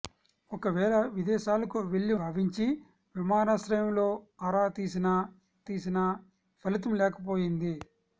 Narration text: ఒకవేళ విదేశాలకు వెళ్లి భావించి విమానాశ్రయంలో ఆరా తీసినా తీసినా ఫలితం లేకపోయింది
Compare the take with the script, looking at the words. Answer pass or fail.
pass